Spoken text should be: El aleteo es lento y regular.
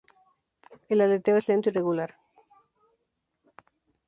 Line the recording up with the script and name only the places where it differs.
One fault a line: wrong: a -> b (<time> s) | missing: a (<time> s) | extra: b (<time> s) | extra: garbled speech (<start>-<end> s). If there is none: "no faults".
no faults